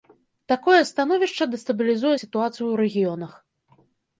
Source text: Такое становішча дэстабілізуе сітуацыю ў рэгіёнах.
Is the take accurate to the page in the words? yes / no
yes